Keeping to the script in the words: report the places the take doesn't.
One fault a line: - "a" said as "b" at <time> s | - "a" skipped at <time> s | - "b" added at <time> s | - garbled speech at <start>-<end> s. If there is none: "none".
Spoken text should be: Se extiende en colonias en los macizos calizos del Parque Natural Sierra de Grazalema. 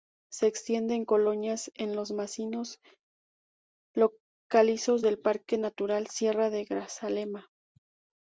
none